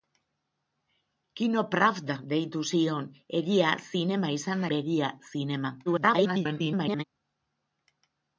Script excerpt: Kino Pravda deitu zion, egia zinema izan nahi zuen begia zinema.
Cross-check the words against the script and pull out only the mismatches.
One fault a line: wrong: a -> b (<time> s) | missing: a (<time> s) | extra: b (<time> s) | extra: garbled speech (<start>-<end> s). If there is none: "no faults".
missing: nahi zuen (4.7 s)
extra: garbled speech (5.9-7.0 s)